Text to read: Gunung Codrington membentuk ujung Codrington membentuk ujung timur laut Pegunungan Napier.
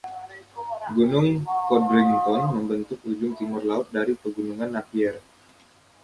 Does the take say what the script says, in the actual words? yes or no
no